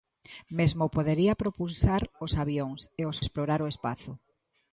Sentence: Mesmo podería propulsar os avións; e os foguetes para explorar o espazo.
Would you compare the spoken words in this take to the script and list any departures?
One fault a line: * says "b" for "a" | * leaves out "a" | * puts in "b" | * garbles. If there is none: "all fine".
* leaves out "foguetes para"